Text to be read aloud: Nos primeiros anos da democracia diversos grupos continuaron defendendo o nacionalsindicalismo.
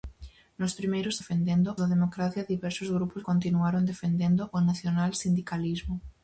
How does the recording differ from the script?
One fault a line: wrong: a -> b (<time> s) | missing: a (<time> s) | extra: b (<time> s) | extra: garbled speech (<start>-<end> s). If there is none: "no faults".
wrong: anos -> defendendo (1.2 s)